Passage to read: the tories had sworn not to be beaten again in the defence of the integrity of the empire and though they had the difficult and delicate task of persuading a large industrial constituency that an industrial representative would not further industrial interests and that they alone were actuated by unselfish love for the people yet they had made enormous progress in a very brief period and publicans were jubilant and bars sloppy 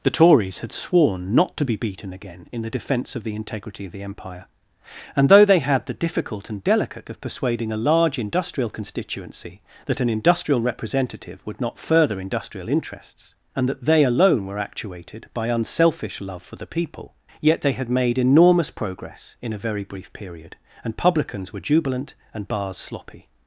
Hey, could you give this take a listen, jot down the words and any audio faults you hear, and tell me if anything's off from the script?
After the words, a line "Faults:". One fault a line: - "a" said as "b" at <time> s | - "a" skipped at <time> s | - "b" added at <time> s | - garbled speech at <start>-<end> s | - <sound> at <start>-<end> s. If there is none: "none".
the tories had sworn not to be beaten again in the defence of the integrity of the empire and though they had the difficult and delicate of persuading a large industrial constituency that an industrial representative would not further industrial interests and that they alone were actuated by unselfish love for the people yet they had made enormous progress in a very brief period and publicans were jubilant and bars sloppy
Faults:
- "task" skipped at 7.1 s